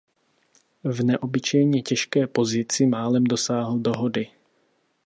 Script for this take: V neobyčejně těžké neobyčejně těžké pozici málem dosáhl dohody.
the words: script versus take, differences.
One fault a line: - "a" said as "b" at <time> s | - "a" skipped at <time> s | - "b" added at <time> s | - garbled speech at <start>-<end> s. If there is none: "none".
- "neobyčejně těžké" skipped at 2.3 s